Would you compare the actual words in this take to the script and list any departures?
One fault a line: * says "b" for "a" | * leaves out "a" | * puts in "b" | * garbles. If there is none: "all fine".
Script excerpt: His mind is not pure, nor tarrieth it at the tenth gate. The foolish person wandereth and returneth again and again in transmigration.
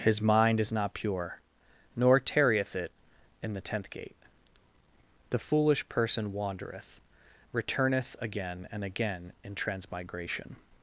* says "in" for "at"
* leaves out "and"